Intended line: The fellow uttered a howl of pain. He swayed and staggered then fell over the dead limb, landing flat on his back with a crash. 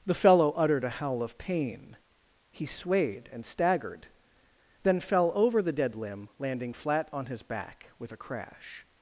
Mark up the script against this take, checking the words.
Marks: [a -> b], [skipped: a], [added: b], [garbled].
The fellow uttered a howl of pain. He swayed and staggered then fell over the dead limb, landing flat on his back with a crash.